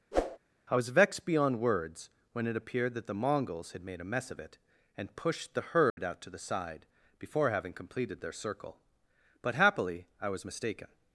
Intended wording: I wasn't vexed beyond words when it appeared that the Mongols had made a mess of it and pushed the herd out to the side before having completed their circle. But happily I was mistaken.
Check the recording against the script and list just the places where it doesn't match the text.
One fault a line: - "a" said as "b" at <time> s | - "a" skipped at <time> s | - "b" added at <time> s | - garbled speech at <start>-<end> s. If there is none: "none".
- "wasn't" said as "was" at 0.7 s